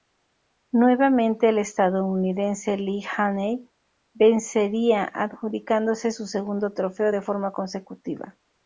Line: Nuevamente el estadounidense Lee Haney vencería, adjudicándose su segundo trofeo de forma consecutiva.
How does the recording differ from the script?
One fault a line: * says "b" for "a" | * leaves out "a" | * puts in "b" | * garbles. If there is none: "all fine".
all fine